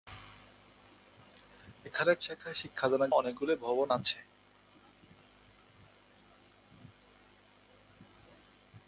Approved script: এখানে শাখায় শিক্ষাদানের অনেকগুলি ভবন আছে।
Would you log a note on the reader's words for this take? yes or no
no